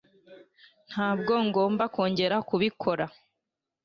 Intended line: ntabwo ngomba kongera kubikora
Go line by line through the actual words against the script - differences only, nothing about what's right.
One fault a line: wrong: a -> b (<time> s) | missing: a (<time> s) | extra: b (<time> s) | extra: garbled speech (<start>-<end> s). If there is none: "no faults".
no faults